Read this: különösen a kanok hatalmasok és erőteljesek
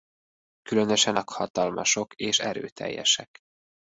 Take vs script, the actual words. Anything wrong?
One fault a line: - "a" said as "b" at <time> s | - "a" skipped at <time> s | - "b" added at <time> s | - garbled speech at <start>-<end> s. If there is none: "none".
- "kanok" skipped at 1.2 s